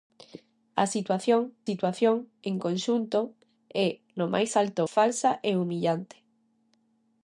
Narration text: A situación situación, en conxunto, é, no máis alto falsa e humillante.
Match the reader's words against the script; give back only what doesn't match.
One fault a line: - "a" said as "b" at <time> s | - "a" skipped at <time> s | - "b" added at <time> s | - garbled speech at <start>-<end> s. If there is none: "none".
none